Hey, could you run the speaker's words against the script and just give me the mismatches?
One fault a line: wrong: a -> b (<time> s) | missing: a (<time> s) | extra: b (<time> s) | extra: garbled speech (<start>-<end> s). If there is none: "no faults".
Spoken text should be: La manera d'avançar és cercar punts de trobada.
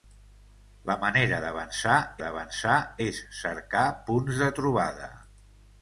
extra: d'avançar (2.2 s)